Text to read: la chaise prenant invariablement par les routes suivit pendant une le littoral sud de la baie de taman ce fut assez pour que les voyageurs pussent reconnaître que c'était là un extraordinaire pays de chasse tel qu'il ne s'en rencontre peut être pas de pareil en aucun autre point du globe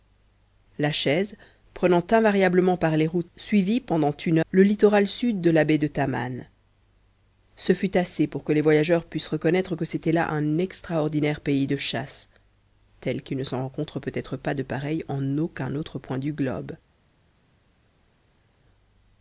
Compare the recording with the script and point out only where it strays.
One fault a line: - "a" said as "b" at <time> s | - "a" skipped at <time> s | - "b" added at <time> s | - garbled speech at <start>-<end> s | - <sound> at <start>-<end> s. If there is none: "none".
none